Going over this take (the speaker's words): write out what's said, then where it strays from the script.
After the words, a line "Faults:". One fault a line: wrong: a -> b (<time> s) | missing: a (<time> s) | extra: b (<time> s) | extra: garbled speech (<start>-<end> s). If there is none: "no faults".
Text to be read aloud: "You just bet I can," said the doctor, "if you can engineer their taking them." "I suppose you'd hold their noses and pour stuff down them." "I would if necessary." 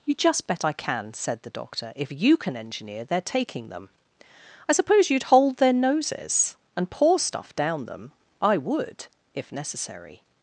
"You just bet I can," said the doctor, "if you can engineer their taking them." "I suppose you'd hold their noses and pour stuff down them." "I would if necessary."
Faults:
no faults